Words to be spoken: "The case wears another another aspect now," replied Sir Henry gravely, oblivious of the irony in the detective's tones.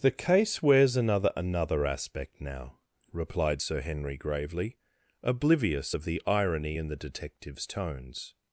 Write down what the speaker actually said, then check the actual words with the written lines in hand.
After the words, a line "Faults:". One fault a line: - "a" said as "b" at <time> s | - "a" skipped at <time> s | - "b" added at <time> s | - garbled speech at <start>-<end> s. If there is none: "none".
"The case wears another another aspect now," replied Sir Henry gravely, oblivious of the irony in the detective's tones.
Faults:
none